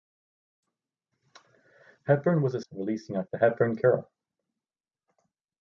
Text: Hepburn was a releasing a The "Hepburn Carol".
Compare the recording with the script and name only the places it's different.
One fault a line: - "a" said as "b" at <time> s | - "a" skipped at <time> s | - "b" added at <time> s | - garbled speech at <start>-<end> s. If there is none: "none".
none